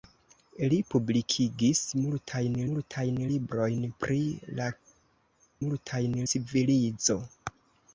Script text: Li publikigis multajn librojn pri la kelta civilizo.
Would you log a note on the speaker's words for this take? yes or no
yes